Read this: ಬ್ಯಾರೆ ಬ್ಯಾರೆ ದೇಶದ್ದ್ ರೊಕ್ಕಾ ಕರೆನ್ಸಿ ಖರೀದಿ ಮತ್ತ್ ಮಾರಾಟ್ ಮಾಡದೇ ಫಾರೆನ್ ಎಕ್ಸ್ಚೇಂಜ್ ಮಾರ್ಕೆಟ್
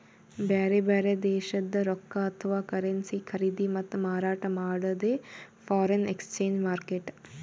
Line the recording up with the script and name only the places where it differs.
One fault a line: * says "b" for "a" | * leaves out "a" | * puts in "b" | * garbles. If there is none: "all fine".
* puts in "ಅಥವಾ"